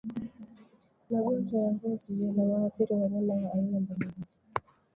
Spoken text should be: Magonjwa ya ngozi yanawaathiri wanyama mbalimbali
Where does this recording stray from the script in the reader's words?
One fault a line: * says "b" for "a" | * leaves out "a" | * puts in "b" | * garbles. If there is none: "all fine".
* puts in "wa aina"